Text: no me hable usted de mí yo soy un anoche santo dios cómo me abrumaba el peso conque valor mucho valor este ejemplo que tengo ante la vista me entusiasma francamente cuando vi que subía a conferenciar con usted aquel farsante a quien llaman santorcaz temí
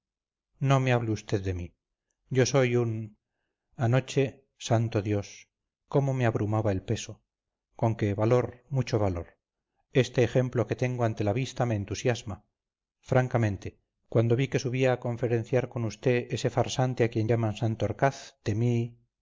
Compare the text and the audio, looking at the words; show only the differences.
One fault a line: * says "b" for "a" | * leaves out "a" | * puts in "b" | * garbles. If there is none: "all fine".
* says "ese" for "aquel"